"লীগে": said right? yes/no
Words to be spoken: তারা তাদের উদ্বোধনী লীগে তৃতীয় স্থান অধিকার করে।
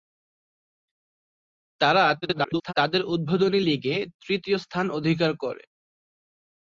yes